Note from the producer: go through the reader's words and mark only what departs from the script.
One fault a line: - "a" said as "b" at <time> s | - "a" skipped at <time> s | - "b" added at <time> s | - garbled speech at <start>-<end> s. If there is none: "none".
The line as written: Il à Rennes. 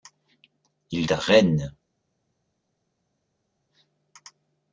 none